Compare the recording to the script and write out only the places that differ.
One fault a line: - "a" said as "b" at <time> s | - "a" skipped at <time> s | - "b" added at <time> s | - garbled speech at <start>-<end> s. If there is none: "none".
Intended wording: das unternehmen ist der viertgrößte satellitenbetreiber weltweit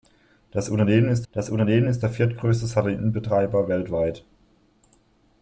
- "das unternehmen ist" added at 1.3 s